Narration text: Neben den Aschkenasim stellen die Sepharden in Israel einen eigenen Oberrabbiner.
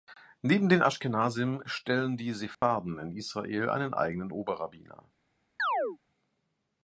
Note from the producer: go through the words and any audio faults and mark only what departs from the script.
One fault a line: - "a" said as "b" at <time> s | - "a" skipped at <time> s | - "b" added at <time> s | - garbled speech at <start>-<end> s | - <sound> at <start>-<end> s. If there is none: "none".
- dropout at 2.5-2.6 s
- chirp at 5.6-6.0 s